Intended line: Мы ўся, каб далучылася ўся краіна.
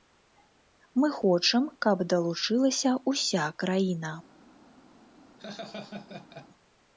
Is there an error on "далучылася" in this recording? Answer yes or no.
no